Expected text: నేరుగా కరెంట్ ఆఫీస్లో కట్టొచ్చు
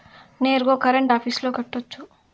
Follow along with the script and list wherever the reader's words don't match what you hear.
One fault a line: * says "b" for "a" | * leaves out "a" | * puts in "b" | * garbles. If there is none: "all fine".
all fine